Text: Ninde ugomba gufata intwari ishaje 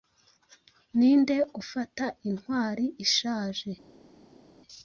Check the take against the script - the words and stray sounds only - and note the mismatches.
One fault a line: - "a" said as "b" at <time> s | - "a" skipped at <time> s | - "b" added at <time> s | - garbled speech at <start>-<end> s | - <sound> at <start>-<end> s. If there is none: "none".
- "ugomba" skipped at 1.4 s